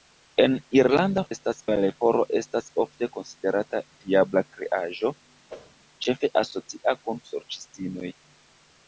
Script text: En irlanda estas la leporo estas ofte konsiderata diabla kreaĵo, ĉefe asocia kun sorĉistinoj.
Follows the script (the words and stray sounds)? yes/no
no